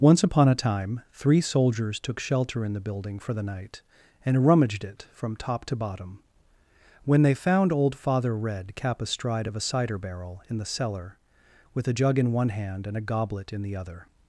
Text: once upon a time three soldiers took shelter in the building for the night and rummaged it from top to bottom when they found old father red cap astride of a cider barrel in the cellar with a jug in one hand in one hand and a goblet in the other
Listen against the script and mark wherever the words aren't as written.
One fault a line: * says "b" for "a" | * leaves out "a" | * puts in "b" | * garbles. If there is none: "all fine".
* leaves out "in one hand"